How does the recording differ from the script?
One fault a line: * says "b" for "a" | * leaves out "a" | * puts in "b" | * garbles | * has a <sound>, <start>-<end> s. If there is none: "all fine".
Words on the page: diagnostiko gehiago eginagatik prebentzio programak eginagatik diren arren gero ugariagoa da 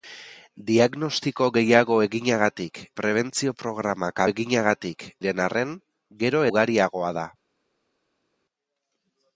all fine